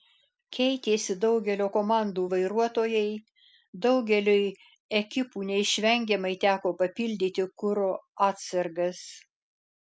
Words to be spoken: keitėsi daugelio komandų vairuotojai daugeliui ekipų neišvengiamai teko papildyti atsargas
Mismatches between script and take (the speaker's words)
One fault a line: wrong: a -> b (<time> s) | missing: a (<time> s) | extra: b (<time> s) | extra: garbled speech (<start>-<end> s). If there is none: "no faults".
extra: kuro (7.7 s)